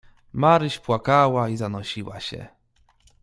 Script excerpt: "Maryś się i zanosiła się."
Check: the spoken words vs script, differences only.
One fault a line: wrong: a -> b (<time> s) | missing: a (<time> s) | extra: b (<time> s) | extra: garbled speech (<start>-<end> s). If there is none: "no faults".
wrong: się -> płakała (0.8 s)